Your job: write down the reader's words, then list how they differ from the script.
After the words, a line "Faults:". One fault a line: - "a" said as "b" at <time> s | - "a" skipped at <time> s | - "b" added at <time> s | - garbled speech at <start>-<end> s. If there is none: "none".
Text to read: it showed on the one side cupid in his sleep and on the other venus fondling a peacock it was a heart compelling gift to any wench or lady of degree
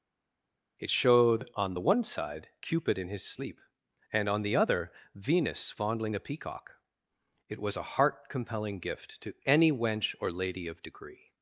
it showed on the one side cupid in his sleep and on the other venus fondling a peacock it was a heart compelling gift to any wench or lady of degree
Faults:
none